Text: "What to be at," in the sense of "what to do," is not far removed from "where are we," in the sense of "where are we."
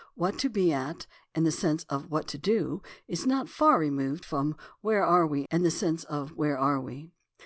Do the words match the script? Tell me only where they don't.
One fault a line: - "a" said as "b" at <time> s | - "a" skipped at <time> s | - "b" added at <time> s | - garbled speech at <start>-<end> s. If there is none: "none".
none